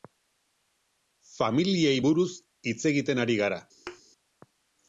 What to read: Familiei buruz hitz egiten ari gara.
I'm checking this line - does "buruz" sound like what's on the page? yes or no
yes